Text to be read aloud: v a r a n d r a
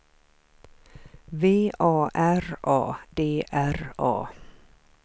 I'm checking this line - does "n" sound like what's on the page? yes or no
no